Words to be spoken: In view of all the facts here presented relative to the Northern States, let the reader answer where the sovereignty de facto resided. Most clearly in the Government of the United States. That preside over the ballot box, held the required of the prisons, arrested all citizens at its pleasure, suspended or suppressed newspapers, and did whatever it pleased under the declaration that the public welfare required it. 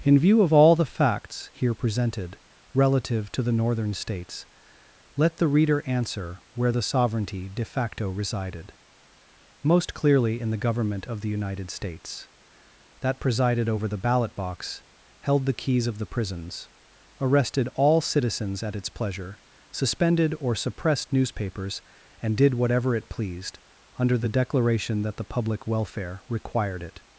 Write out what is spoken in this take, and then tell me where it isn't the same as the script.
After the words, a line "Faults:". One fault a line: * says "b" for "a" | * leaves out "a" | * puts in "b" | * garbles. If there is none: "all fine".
In view of all the facts here presented relative to the Northern States, let the reader answer where the sovereignty de facto resided. Most clearly in the Government of the United States. That presided over the ballot box, held the keys of the prisons, arrested all citizens at its pleasure, suspended or suppressed newspapers, and did whatever it pleased under the declaration that the public welfare required it.
Faults:
* says "presided" for "preside"
* says "keys" for "required"